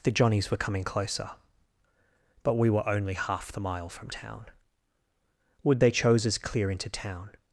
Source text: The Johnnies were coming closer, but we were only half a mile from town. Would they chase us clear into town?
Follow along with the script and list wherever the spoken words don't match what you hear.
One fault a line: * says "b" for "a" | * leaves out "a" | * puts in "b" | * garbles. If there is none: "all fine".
* says "the" for "a"
* says "chose" for "chase"